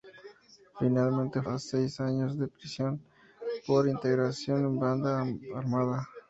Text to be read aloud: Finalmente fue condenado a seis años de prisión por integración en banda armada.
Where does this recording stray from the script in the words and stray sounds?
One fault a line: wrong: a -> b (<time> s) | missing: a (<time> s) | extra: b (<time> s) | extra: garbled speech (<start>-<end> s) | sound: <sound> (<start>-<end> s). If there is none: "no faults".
missing: fue condenado (1.4 s)